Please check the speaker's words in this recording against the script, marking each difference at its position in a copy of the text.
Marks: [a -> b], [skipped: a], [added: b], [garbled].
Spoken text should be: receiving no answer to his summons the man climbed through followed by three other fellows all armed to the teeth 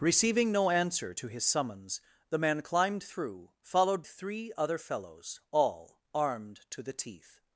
receiving no answer to his summons the man climbed through followed [skipped: by] three other fellows all armed to the teeth